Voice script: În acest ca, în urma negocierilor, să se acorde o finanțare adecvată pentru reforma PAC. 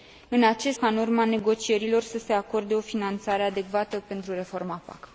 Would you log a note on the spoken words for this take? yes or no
no